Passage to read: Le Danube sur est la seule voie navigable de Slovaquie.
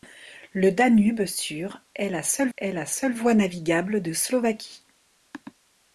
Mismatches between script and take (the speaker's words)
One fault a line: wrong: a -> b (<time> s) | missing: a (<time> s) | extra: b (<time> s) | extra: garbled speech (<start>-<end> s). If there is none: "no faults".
extra: est la seule (2.6 s)